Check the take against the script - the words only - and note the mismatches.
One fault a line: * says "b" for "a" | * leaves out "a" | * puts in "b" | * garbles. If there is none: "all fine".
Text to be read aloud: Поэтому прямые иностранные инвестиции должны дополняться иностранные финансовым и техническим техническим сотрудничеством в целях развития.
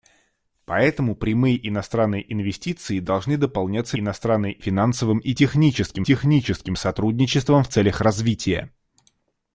all fine